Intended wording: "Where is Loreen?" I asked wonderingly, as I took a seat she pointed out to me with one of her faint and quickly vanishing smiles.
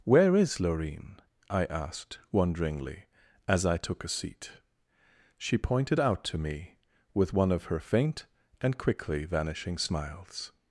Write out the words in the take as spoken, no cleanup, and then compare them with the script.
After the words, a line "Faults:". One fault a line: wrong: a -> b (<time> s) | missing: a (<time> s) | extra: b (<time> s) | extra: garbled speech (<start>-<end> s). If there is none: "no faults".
"Where is Loreen?" I asked wonderingly, as I took a seat she pointed out to me with one of her faint and quickly vanishing smiles.
Faults:
no faults